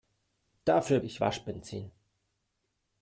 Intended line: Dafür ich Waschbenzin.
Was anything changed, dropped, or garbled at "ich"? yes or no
no